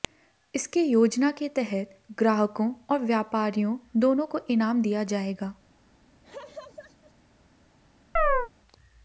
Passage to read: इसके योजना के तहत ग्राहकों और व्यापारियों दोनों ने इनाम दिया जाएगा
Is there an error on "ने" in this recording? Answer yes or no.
yes